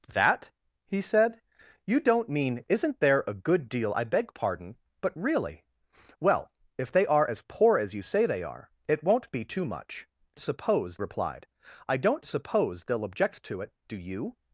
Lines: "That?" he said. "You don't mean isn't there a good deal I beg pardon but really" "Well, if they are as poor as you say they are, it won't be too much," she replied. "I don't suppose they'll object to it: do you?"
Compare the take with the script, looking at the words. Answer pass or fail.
fail